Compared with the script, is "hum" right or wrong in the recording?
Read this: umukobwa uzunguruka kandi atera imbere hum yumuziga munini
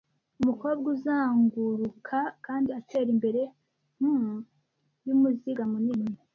right